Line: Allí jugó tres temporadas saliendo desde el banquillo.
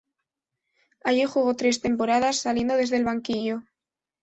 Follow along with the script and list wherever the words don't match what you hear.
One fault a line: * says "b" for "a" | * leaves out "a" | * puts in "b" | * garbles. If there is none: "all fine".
all fine